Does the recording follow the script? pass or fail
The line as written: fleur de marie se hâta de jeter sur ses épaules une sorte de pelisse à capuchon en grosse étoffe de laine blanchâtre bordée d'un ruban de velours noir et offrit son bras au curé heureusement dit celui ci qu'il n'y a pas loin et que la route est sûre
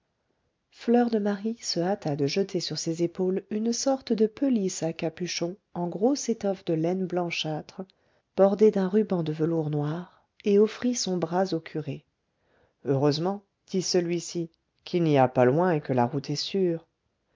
pass